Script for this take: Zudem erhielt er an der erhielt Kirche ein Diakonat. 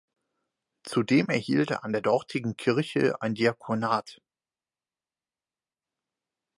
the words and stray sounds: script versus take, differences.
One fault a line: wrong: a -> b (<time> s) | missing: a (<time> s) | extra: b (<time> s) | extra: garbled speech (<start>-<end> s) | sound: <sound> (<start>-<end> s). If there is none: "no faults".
wrong: erhielt -> dortigen (2.0 s)